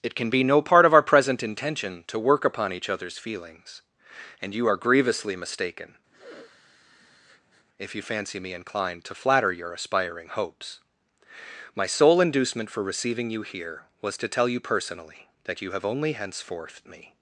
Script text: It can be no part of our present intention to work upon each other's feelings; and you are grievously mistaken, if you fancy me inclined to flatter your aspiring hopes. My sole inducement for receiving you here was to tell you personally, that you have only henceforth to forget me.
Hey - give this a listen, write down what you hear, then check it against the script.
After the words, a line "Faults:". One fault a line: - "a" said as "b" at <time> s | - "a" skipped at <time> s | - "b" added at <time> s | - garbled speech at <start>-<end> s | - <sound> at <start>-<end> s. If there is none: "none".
It can be no part of our present intention to work upon each other's feelings; and you are grievously mistaken, if you fancy me inclined to flatter your aspiring hopes. My sole inducement for receiving you here was to tell you personally, that you have only henceforth me.
Faults:
- sniff at 6.1-7.7 s
- "to forget" skipped at 16.8 s